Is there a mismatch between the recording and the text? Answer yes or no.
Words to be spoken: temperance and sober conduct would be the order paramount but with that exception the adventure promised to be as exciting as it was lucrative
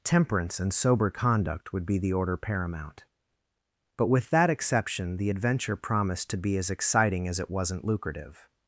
yes